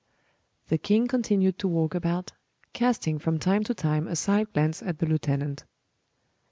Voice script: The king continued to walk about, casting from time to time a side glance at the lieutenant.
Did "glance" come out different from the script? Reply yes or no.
no